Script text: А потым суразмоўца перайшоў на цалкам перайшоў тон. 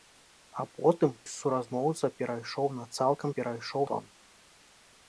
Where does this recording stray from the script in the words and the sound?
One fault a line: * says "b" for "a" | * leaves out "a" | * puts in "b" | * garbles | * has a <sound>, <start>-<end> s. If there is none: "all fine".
all fine